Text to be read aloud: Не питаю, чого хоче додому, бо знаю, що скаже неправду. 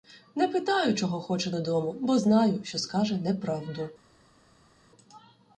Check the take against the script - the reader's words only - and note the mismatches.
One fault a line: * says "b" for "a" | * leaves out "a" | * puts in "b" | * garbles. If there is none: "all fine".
all fine